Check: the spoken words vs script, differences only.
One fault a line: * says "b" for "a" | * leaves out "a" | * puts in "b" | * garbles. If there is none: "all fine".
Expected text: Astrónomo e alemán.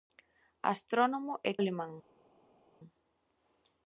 all fine